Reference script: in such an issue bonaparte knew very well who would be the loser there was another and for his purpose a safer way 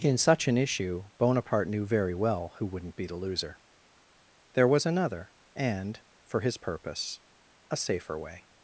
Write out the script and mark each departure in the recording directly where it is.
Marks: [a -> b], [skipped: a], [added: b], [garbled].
in such an issue bonaparte knew very well who [would -> wouldn't] be the loser there was another and for his purpose a safer way